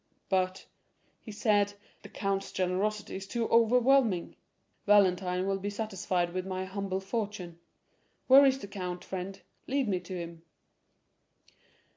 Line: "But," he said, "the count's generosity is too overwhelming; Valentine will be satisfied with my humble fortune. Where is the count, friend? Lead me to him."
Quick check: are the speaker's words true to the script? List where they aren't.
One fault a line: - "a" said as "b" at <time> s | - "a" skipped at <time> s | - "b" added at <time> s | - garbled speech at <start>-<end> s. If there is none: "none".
none